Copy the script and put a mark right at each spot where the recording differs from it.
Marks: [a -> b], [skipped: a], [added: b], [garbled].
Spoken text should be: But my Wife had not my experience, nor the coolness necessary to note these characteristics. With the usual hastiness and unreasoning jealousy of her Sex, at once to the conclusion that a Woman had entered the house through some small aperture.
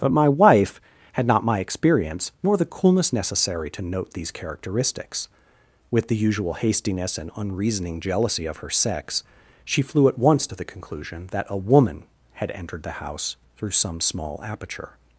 But my Wife had not my experience, nor the coolness necessary to note these characteristics. With the usual hastiness and unreasoning jealousy of her Sex, [added: she flew] at once to the conclusion that a Woman had entered the house through some small aperture.